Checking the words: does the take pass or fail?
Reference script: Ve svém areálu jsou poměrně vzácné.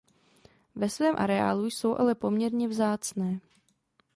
fail